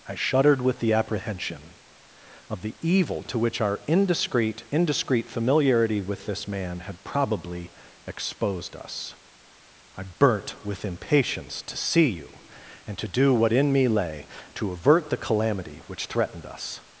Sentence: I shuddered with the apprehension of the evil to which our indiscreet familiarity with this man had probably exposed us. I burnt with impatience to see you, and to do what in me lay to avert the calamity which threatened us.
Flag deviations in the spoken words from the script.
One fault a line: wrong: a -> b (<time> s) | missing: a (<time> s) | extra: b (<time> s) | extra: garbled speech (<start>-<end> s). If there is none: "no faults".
extra: indiscreet (4.7 s)